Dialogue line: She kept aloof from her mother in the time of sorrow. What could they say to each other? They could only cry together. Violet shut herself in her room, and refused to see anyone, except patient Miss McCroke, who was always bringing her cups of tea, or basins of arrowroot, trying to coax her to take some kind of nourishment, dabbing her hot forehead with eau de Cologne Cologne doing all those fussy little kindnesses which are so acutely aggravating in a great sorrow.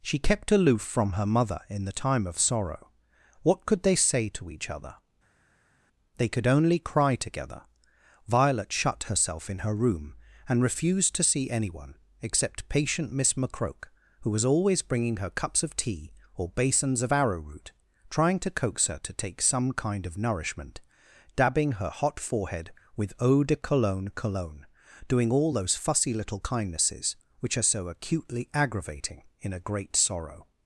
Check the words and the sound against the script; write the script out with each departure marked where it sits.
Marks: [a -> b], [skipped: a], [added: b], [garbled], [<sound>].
She kept aloof from her mother in the time of sorrow. What could they say to each other? They could only cry together. Violet shut herself in her room, and refused to see anyone, except patient Miss McCroke, who was always bringing her cups of tea, or basins of arrowroot, trying to coax her to take some kind of nourishment, dabbing her hot forehead with eau de Cologne Cologne doing all those fussy little kindnesses which are so acutely aggravating in a great sorrow.